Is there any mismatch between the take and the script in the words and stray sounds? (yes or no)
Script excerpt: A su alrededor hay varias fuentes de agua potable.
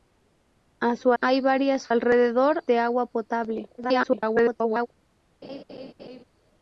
yes